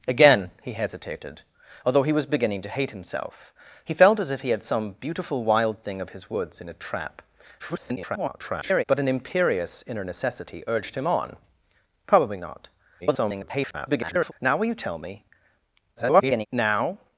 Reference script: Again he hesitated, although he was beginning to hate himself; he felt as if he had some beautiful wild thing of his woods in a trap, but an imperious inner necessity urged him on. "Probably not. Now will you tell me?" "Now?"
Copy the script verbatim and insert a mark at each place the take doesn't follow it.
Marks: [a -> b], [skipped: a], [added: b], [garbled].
Again he hesitated, although he was beginning to hate himself; he felt as if he had some beautiful wild thing of his woods in a trap, [garbled] but an imperious inner necessity urged him on. "Probably not. [garbled] Now will you tell me?" [garbled] "Now?"